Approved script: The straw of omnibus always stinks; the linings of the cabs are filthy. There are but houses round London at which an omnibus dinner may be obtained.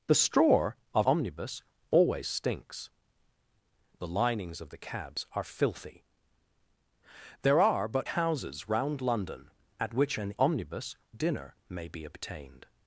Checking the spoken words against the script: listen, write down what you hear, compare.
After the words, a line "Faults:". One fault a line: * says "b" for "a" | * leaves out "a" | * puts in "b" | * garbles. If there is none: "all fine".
The straw of omnibus always stinks; the linings of the cabs are filthy. There are but houses round London at which an omnibus dinner may be obtained.
Faults:
all fine